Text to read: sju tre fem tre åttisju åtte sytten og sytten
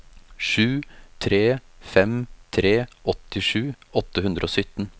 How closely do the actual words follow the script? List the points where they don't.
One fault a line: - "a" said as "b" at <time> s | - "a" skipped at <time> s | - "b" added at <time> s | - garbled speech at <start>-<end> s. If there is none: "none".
- "sytten" said as "hundre" at 4.2 s